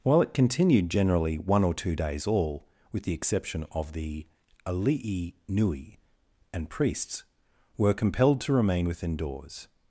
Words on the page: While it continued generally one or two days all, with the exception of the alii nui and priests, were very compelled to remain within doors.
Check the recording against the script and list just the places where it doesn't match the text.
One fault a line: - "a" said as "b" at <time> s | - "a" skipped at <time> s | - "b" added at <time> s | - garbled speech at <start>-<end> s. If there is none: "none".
- "very" skipped at 7.9 s